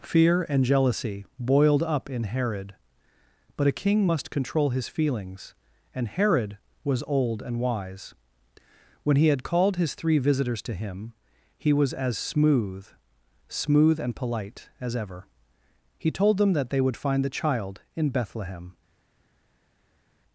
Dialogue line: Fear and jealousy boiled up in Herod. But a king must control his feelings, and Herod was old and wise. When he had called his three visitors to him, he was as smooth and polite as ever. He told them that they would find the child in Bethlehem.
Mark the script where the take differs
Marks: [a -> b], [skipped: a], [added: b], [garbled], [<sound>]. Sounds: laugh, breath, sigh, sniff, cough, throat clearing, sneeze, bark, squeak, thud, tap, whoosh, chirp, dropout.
Fear and jealousy boiled up in Herod. But a king must control his feelings, and Herod was old and wise. When he had called his three visitors to him, he was as smooth [added: smooth] and polite as ever. He told them that they would find the child in Bethlehem.